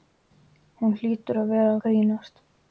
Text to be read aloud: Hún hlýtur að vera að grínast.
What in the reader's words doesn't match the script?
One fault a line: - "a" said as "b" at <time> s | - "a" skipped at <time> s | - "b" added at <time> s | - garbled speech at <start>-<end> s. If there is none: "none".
- "að" skipped at 1.8 s